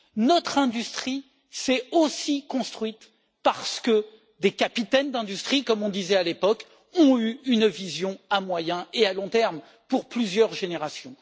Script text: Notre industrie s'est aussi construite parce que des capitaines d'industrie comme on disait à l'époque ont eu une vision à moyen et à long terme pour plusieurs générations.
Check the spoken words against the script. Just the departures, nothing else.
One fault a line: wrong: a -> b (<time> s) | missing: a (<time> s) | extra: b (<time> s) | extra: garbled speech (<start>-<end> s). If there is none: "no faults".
no faults